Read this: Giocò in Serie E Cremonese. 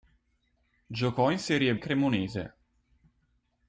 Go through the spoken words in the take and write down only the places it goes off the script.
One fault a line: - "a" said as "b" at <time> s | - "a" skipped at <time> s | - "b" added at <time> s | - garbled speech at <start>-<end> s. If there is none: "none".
none